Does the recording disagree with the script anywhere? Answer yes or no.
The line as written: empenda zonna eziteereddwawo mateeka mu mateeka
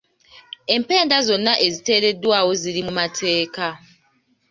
yes